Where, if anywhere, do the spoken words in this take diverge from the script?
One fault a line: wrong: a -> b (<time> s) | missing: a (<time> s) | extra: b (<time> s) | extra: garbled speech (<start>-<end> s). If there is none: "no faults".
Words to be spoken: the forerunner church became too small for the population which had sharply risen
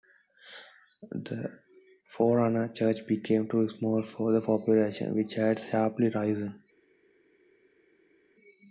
no faults